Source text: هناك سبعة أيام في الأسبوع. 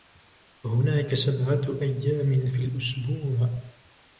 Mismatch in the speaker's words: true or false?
false